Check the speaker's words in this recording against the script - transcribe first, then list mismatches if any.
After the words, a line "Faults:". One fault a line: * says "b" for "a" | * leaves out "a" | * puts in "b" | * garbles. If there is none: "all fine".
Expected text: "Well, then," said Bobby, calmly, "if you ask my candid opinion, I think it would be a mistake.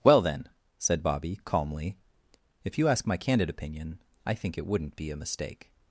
"Well, then," said Bobby, calmly, "if you ask my candid opinion, I think it wouldn't be a mistake.
Faults:
* says "wouldn't" for "would"